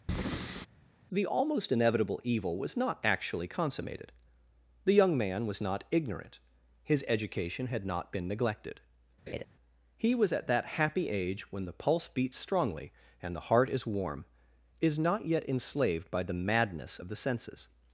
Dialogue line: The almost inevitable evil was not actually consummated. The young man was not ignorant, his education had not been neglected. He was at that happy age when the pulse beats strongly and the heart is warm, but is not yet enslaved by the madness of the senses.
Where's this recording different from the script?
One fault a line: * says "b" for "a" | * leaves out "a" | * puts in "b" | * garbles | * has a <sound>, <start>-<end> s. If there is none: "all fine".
* has a breath, 0.1-0.7 s
* has a laugh, 9.3-9.4 s
* leaves out "but"